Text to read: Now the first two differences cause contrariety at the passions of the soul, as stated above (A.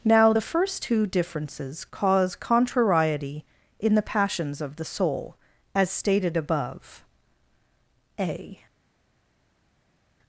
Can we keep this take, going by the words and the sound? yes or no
no